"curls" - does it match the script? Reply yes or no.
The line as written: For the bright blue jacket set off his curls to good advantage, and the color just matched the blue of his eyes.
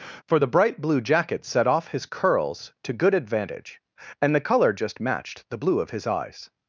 yes